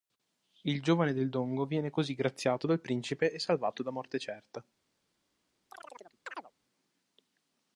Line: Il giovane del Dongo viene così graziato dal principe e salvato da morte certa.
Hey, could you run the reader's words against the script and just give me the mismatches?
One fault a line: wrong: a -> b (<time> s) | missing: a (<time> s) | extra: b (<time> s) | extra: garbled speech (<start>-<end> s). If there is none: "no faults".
no faults